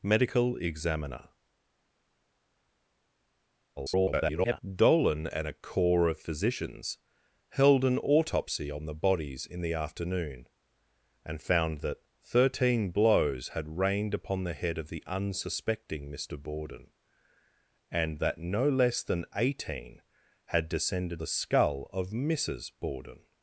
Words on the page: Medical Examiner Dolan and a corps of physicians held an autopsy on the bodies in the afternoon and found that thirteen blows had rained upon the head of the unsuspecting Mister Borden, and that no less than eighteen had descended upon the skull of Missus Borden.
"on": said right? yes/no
yes